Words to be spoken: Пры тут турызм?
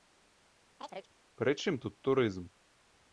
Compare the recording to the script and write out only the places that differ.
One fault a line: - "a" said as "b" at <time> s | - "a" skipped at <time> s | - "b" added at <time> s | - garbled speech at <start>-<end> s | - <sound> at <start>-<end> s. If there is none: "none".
- chirp at 0.8-1.1 s
- "чым" added at 1.6 s